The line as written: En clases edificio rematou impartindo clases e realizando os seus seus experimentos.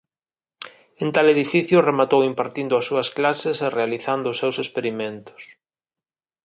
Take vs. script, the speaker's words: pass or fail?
fail